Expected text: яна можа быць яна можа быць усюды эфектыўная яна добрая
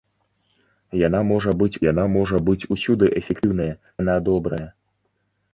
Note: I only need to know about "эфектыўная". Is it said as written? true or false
true